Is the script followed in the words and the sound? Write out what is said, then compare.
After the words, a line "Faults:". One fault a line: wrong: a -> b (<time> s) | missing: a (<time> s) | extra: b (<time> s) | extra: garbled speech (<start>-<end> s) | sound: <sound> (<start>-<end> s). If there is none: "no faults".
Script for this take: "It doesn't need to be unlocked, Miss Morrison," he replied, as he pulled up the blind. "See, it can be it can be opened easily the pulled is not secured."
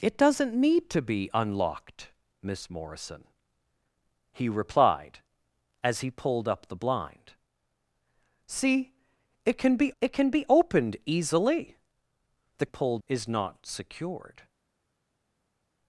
"It doesn't need to be unlocked, Miss Morrison," he replied, as he pulled up the blind. "See, it can be it can be opened easily the pulled is not secured."
Faults:
no faults